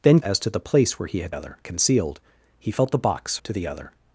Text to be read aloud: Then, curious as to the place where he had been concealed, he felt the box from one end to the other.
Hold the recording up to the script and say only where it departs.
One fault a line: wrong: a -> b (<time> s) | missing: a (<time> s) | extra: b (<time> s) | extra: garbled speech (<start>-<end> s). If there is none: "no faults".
missing: curious (0.2 s)
wrong: been -> other (1.3 s)
missing: from one end (3.4 s)